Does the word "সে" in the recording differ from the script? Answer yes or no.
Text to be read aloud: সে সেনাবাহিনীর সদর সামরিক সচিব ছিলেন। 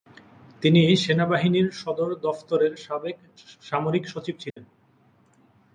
yes